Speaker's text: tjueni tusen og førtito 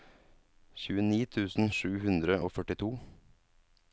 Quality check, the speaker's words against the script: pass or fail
fail